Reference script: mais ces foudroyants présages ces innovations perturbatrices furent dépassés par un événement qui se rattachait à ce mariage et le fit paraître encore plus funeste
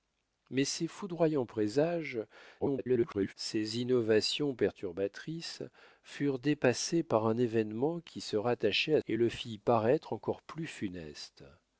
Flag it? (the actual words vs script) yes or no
yes